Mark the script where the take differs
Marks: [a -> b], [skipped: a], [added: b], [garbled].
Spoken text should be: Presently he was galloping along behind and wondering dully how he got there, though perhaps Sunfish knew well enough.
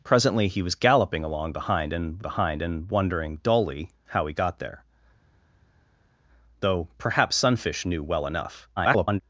Presently he was galloping along behind and [added: behind and] wondering dully how he got there, though perhaps Sunfish knew well enough. [garbled]